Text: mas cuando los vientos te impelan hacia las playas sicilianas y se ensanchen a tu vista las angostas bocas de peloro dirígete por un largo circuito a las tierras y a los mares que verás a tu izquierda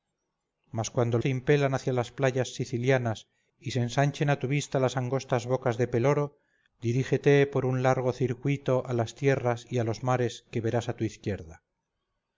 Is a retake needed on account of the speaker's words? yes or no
yes